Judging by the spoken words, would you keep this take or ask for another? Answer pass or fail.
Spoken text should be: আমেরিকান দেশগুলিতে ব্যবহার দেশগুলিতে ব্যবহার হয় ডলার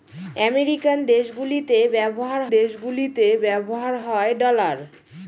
pass